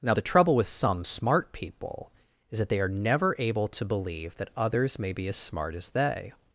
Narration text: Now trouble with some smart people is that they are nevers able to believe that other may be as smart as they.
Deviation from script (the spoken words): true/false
true